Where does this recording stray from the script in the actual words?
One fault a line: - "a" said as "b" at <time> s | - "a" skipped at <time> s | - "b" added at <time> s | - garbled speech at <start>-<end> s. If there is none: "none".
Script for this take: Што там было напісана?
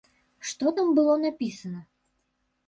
none